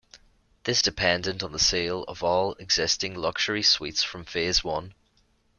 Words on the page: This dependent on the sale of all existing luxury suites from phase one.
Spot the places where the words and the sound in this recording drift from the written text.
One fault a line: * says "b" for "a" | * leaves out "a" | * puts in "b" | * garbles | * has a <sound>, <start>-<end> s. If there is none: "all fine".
all fine